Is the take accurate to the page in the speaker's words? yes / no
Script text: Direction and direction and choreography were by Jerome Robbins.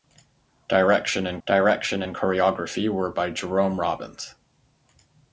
yes